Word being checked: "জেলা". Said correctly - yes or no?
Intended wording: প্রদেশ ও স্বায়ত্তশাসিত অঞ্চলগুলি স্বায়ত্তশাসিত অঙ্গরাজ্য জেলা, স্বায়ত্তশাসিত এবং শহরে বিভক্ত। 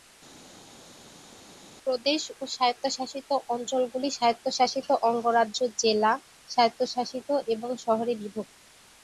yes